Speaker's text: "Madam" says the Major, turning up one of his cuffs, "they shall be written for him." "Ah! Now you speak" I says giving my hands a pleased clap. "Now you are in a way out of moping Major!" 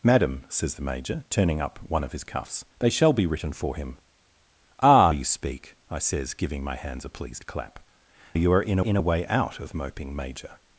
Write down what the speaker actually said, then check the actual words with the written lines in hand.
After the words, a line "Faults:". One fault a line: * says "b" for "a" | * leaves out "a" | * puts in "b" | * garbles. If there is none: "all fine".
"Madam" says the Major, turning up one of his cuffs, "they shall be written for him." "Ah! You speak" I says giving my hands a pleased clap. "You are in in a way out of moping Major!"
Faults:
* leaves out "Now"
* leaves out "Now"
* puts in "in"